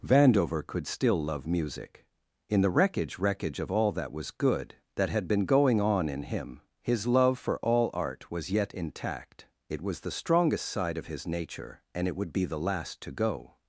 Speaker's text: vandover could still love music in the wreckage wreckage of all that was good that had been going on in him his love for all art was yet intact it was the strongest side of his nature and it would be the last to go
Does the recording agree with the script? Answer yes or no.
yes